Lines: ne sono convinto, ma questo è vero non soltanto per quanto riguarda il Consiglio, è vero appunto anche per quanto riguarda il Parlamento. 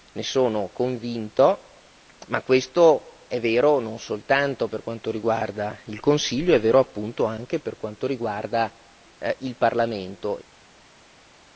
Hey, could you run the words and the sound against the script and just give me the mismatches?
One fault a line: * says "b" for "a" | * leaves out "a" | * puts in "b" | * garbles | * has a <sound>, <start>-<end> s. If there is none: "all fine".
all fine